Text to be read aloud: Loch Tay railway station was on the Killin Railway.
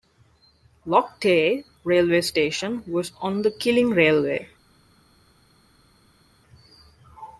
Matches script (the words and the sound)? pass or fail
pass